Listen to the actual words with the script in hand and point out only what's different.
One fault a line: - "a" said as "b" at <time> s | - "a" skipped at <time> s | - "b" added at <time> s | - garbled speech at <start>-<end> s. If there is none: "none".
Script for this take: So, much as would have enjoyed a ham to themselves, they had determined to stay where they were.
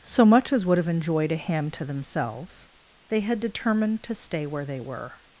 none